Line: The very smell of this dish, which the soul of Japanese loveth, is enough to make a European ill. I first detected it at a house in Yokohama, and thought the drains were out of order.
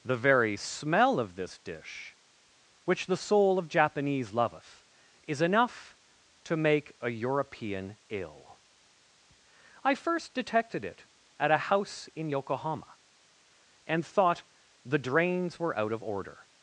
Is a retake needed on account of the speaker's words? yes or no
no